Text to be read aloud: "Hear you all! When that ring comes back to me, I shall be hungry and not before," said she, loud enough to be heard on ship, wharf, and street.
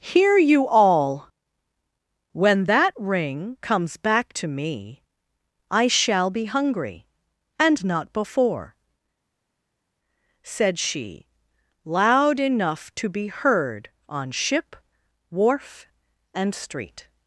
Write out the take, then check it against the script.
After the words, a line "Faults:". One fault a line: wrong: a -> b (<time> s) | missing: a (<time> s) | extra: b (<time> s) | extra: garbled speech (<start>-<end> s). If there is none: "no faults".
"Hear you all! When that ring comes back to me, I shall be hungry and not before," said she, loud enough to be heard on ship, wharf, and street.
Faults:
no faults